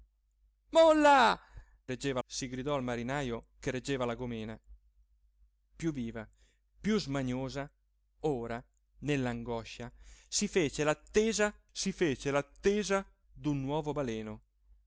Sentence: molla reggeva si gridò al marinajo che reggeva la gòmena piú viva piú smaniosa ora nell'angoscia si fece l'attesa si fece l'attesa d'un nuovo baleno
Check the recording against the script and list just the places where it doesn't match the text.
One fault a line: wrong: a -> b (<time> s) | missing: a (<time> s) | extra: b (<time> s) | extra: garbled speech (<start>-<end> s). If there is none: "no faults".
no faults